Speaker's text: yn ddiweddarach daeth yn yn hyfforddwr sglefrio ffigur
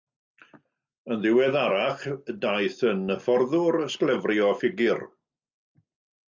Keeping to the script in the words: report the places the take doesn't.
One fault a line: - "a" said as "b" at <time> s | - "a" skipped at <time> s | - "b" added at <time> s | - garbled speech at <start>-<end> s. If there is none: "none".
- "yn" skipped at 3.0 s